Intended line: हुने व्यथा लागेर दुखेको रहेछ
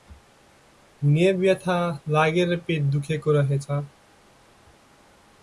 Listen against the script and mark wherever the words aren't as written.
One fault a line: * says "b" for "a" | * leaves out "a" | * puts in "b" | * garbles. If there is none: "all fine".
* puts in "पेट"